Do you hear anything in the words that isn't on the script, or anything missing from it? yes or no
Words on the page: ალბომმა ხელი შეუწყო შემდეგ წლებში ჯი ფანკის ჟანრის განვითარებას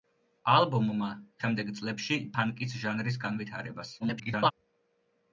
yes